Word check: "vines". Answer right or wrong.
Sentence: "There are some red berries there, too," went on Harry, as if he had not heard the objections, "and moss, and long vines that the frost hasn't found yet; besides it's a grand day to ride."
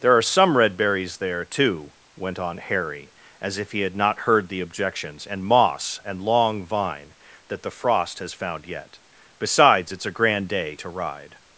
wrong